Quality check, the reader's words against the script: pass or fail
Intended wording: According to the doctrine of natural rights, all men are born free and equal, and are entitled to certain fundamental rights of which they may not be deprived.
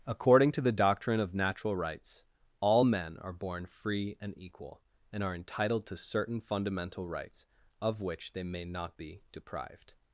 pass